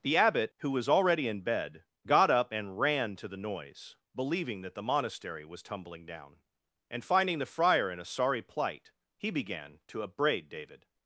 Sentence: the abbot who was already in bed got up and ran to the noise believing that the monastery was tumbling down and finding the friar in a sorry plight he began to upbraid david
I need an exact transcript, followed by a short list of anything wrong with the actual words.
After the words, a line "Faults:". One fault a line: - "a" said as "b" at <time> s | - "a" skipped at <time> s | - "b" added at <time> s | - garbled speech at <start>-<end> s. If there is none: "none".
the abbot who was already in bed got up and ran to the noise believing that the monastery was tumbling down and finding the friar in a sorry plight he began to upbraid david
Faults:
none